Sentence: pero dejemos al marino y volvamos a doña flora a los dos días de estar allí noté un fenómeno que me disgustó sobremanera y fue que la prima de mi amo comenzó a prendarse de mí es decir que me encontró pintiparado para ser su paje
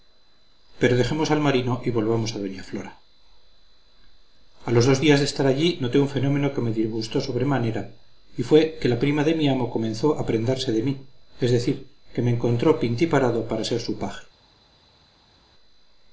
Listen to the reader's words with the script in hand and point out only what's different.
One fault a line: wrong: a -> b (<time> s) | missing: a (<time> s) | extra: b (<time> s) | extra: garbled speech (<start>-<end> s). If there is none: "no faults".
no faults